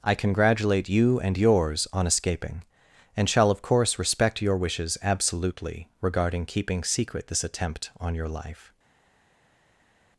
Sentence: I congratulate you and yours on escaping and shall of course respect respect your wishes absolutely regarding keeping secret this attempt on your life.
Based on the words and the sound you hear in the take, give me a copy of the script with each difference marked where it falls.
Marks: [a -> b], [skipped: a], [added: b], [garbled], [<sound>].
I congratulate you and yours on escaping and shall of course respect [skipped: respect] your wishes absolutely regarding keeping secret this attempt on your life.